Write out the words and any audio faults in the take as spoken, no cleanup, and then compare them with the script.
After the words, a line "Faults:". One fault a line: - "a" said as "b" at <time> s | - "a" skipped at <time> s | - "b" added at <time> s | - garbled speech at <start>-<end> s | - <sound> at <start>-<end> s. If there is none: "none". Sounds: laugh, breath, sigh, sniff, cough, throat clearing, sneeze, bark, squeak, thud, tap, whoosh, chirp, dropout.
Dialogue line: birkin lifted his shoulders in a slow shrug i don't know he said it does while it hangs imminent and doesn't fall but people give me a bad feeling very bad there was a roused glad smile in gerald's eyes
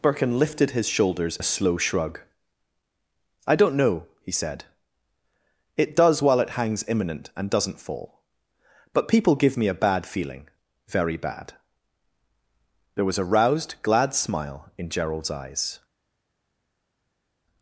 birkin lifted his shoulders a slow shrug i don't know he said it does while it hangs imminent and doesn't fall but people give me a bad feeling very bad there was a roused glad smile in gerald's eyes
Faults:
- "in" skipped at 1.4 s